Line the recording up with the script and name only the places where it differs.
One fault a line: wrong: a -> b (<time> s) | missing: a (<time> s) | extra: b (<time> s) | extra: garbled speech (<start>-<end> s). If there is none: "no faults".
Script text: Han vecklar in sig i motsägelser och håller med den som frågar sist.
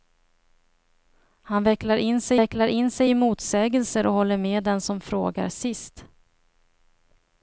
extra: vecklar in sig (2.3 s)